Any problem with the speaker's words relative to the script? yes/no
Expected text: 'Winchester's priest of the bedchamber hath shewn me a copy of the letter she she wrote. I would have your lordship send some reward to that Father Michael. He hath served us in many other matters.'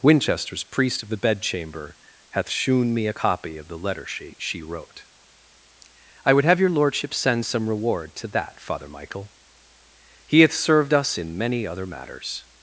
no